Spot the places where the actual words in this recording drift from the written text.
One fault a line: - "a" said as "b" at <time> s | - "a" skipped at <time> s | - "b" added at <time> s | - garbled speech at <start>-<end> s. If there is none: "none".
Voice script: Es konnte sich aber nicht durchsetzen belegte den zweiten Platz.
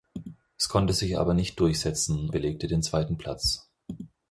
none